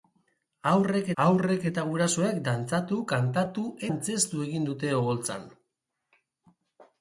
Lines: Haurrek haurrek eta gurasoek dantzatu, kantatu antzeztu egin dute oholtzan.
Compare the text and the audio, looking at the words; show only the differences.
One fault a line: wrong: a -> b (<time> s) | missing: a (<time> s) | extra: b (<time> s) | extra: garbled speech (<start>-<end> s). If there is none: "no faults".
no faults